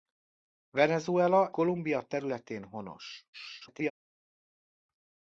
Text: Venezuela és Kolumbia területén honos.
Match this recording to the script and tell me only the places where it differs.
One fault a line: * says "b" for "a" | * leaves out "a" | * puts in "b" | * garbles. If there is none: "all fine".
* leaves out "és"
* garbles